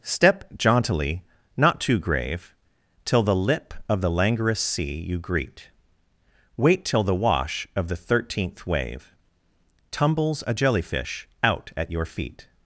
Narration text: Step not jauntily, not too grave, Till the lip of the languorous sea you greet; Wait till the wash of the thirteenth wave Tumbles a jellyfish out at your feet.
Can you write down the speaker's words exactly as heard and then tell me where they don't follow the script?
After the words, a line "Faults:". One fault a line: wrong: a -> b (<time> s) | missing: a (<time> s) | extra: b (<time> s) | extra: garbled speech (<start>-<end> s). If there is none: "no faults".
Step jauntily, not too grave, Till the lip of the languorous sea you greet; Wait till the wash of the thirteenth wave Tumbles a jellyfish out at your feet.
Faults:
missing: not (0.5 s)